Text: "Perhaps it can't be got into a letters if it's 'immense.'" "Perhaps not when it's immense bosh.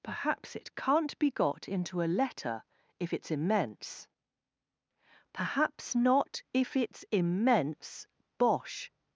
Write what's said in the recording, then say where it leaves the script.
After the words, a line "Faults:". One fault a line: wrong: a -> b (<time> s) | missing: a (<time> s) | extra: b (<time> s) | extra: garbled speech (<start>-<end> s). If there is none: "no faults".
"Perhaps it can't be got into a letter if it's 'immense.'" "Perhaps not if it's immense bosh.
Faults:
wrong: letters -> letter (2.1 s)
wrong: when -> if (6.5 s)